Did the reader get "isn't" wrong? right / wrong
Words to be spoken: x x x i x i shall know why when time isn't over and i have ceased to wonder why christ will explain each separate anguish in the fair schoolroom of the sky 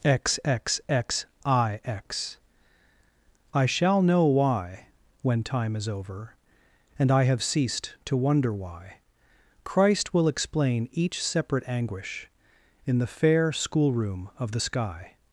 wrong